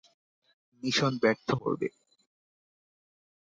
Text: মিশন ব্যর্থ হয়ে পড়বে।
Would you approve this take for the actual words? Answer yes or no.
no